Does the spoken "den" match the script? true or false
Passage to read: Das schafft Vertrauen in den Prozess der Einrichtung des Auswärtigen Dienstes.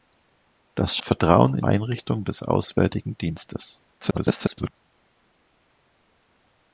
false